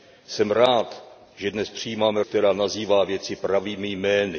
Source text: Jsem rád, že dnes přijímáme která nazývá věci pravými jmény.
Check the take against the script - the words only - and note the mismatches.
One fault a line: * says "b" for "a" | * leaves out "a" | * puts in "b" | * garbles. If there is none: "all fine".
all fine